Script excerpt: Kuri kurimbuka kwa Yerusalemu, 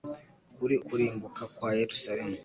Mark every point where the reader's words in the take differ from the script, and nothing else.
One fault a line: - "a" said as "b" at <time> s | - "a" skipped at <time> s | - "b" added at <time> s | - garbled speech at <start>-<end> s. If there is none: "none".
none